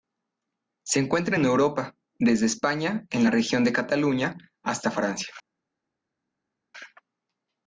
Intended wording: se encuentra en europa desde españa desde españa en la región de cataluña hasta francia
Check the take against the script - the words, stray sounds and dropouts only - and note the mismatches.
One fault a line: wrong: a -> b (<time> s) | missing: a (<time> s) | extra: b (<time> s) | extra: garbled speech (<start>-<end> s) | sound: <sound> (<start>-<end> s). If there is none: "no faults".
missing: desde españa (3.0 s)